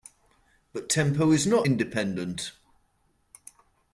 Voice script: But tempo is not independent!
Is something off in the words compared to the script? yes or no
no